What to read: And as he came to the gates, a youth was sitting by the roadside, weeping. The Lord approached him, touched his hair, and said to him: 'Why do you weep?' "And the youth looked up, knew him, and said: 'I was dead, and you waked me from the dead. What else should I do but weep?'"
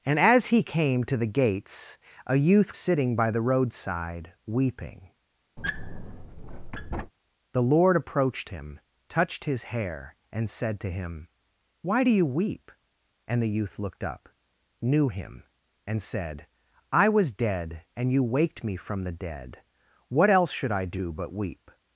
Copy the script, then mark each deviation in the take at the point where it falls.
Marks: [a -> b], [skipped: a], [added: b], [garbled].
And as he came to the gates, a youth [skipped: was] sitting by the roadside, weeping. The Lord approached him, touched his hair, and said to him: 'Why do you weep?' "And the youth looked up, knew him, and said: 'I was dead, and you waked me from the dead. What else should I do but weep?'"